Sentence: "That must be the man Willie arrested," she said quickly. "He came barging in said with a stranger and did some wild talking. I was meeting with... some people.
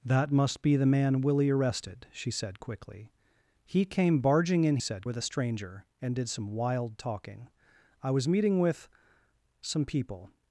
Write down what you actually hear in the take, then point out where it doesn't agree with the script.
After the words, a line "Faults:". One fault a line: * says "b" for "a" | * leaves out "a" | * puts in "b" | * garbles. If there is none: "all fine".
"That must be the man Willie arrested," she said quickly. "He came barging in said with a stranger and did some wild talking. I was meeting with... some people.
Faults:
all fine